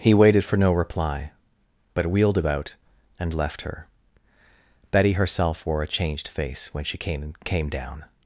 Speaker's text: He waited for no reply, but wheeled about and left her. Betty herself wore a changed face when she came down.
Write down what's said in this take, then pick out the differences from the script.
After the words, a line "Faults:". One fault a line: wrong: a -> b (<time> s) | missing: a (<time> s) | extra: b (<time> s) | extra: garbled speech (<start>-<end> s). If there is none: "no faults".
He waited for no reply, but wheeled about and left her. Betty herself wore a changed face when she came came down.
Faults:
extra: came (7.5 s)